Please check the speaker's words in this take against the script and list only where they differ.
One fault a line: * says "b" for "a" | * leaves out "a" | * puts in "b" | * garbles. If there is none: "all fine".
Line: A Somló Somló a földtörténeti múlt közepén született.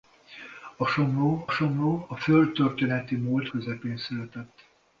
all fine